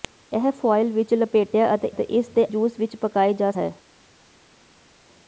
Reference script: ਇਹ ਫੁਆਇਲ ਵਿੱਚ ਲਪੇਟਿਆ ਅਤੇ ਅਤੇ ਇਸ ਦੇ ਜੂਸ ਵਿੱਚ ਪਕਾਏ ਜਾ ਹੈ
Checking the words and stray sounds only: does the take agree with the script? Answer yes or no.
yes